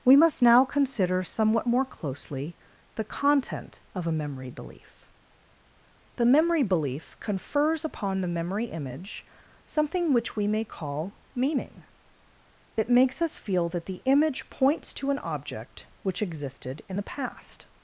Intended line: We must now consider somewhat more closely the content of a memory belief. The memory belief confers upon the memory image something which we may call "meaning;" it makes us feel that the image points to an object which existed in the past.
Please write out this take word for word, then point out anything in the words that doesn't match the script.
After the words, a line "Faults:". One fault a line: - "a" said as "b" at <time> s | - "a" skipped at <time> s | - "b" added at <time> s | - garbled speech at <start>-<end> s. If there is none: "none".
We must now consider somewhat more closely the content of a memory belief. The memory belief confers upon the memory image something which we may call "meaning;" it makes us feel that the image points to an object which existed in the past.
Faults:
none